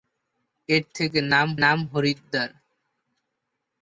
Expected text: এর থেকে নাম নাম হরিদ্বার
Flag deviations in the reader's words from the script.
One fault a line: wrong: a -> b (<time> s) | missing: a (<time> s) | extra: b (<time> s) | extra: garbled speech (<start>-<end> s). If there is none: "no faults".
no faults